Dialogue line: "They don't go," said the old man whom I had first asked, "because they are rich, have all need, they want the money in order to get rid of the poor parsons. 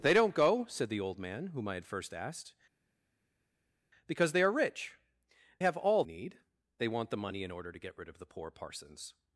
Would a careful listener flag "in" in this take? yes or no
no